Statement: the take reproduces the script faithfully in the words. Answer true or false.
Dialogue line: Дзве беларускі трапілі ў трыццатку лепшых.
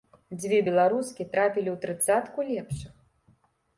true